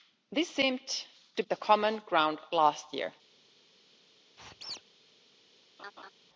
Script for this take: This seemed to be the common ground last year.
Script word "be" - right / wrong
wrong